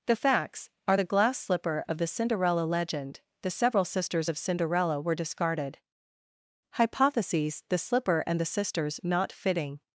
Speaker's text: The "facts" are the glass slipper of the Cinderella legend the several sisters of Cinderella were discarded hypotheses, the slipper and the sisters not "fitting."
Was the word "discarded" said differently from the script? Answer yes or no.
no